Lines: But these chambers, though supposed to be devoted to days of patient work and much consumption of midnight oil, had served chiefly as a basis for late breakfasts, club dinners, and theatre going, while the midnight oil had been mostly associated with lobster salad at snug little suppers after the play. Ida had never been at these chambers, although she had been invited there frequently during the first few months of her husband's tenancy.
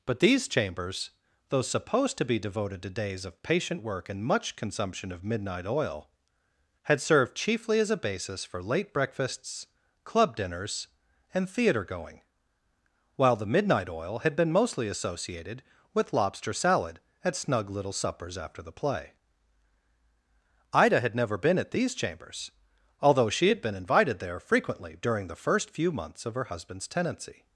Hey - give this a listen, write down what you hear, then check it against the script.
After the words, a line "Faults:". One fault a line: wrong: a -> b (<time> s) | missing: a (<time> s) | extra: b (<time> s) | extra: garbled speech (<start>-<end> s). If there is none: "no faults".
But these chambers, though supposed to be devoted to days of patient work and much consumption of midnight oil, had served chiefly as a basis for late breakfasts, club dinners, and theatre going, while the midnight oil had been mostly associated with lobster salad at snug little suppers after the play. Ida had never been at these chambers, although she had been invited there frequently during the first few months of her husband's tenancy.
Faults:
no faults